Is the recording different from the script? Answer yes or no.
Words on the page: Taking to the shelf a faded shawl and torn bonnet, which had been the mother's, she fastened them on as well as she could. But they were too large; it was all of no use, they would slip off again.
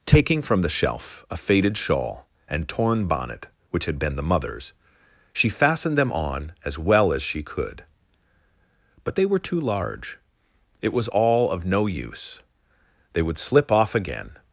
yes